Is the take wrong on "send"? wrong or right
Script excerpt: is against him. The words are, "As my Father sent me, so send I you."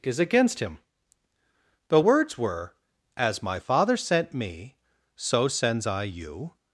wrong